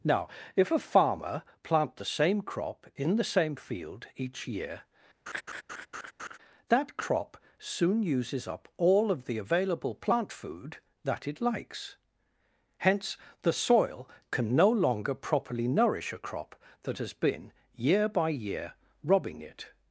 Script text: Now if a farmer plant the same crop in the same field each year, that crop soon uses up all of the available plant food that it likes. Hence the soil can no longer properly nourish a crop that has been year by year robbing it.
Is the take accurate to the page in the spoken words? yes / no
yes